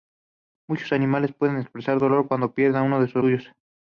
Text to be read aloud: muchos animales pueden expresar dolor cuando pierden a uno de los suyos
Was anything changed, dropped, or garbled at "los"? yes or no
yes